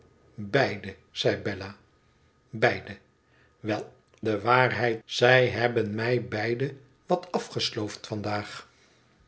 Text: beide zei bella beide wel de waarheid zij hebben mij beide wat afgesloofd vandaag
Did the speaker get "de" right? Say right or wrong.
right